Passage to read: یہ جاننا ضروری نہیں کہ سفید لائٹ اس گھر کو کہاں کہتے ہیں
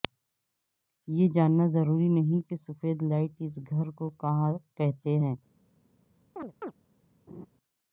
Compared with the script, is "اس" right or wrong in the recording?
right